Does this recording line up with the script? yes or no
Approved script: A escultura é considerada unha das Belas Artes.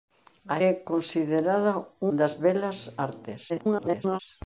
no